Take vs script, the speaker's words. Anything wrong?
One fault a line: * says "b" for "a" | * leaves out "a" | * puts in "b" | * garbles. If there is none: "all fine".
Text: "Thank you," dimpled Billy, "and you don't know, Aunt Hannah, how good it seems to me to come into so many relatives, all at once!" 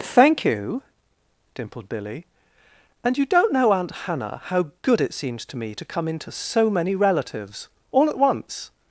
all fine